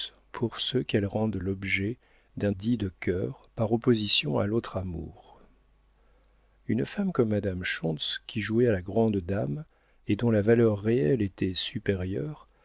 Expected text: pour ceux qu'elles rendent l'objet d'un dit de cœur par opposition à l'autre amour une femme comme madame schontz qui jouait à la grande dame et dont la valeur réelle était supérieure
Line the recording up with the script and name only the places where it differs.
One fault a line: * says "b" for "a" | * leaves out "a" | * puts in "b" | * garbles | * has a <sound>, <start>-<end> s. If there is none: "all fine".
all fine